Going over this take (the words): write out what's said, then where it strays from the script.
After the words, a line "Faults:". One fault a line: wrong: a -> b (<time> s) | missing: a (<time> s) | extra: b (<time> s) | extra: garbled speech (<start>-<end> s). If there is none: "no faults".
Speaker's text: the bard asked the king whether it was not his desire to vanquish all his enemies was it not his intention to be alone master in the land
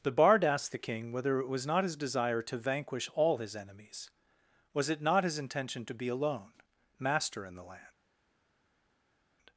the bard asked the king whether it was not his desire to vanquish all his enemies was it not his intention to be alone master in the land
Faults:
no faults